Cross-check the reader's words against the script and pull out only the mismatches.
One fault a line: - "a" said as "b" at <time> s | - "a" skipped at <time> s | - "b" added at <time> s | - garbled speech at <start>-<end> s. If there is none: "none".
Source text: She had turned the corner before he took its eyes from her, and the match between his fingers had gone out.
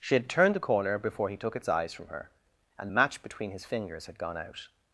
none